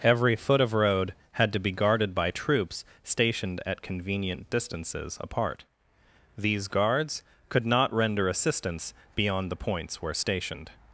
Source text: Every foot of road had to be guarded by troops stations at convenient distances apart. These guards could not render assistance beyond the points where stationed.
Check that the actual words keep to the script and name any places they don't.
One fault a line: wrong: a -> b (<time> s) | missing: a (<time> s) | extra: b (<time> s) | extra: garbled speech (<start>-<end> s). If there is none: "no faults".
wrong: stations -> stationed (3.0 s)